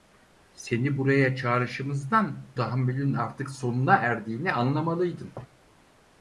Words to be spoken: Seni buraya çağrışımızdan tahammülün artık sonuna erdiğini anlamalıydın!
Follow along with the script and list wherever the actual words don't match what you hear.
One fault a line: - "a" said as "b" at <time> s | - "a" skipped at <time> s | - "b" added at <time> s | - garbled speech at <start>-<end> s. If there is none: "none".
none